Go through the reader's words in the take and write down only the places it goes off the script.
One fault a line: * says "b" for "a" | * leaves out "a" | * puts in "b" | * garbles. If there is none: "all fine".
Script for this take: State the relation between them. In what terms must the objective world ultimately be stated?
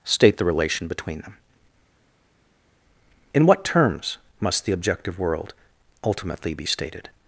all fine